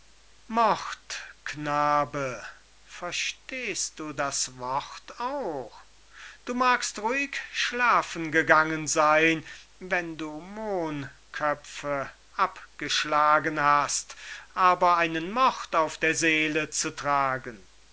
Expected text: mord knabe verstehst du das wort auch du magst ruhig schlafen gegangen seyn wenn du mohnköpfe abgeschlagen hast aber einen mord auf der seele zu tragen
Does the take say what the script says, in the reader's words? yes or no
yes